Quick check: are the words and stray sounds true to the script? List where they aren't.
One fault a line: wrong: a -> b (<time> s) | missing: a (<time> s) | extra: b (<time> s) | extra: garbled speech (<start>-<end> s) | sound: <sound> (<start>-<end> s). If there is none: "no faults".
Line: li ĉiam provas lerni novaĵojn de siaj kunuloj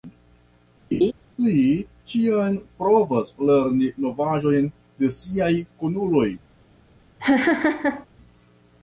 sound: laugh (0.9-1.1 s)
sound: laugh (7.2-8.1 s)